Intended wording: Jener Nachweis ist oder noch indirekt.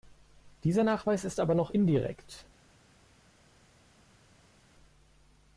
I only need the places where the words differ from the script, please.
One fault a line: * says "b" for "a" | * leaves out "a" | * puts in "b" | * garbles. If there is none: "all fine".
* says "Dieser" for "Jener"
* says "aber" for "oder"